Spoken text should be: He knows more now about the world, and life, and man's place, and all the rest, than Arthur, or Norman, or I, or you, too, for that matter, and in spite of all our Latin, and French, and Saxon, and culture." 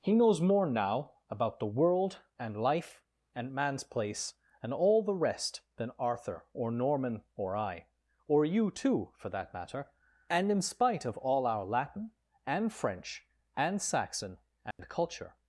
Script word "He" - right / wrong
right